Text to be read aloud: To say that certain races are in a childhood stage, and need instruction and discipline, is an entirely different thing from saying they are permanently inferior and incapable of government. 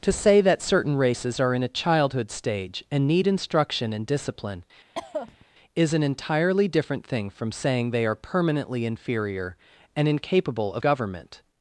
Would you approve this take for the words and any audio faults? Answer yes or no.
no